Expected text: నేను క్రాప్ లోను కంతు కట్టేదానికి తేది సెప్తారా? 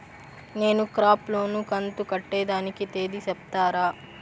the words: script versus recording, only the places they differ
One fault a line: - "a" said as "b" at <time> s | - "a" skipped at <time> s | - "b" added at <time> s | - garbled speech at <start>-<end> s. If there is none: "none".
none